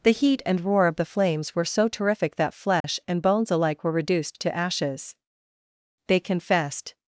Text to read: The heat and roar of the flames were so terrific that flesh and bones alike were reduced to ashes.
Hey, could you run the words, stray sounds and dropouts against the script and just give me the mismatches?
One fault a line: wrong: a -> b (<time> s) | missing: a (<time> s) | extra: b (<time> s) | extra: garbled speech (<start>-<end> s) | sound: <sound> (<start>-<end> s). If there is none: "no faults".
sound: dropout (2.8-2.8 s)
extra: They confessed (6.1 s)